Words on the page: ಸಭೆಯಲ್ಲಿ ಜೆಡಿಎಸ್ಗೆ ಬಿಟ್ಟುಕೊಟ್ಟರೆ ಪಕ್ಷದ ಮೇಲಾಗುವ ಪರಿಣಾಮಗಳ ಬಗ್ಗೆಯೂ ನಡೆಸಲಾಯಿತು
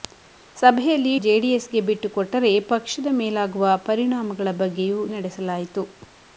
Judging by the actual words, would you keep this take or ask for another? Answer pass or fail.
pass